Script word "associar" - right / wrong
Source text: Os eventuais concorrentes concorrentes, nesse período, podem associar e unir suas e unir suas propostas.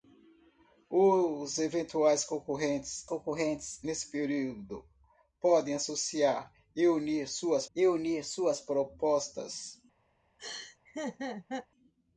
right